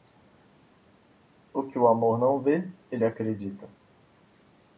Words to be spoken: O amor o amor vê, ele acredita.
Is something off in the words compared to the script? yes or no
yes